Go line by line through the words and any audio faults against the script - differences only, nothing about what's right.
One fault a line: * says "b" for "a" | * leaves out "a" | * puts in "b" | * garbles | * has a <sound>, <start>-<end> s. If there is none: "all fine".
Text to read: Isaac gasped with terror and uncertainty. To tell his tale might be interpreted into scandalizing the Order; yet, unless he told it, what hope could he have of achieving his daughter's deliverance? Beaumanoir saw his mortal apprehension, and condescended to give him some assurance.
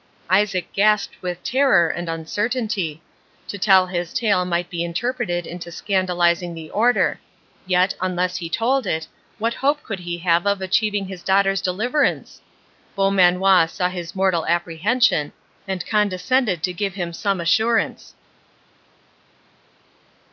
all fine